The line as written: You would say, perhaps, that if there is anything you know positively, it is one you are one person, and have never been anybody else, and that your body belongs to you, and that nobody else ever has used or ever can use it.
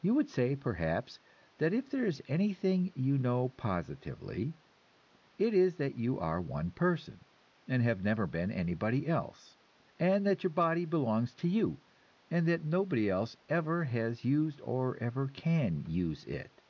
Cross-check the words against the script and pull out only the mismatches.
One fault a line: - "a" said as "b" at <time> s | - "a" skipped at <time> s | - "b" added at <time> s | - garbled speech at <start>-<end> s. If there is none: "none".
- "one" said as "that" at 5.8 s